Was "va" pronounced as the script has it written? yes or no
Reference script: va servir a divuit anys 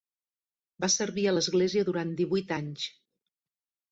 yes